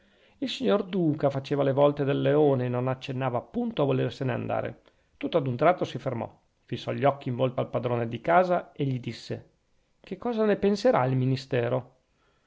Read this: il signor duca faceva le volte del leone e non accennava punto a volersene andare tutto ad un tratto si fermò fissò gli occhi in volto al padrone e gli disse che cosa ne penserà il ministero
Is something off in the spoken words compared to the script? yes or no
yes